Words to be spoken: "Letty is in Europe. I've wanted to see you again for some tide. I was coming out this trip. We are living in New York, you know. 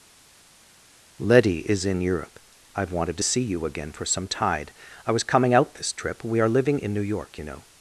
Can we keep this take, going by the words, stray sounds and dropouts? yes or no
yes